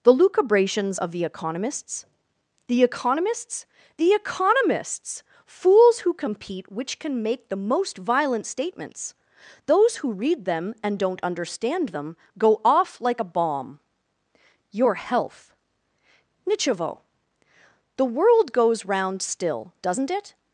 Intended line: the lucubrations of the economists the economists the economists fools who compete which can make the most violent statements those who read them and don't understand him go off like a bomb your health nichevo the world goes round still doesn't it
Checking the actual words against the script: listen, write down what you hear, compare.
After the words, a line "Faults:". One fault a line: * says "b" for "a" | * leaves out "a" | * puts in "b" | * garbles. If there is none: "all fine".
the lucubrations of the economists the economists the economists fools who compete which can make the most violent statements those who read them and don't understand them go off like a bomb your health nichevo the world goes round still doesn't it
Faults:
* says "them" for "him"